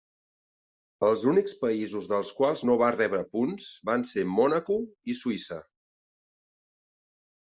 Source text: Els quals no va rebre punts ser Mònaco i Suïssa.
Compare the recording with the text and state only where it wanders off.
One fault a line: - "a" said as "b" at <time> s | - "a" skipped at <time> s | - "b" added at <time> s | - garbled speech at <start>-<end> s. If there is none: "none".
- "únics països dels" added at 1.3 s
- "van" added at 3.9 s